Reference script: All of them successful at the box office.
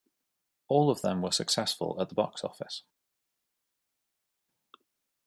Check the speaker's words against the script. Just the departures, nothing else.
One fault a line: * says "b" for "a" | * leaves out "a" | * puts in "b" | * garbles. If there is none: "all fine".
* puts in "were"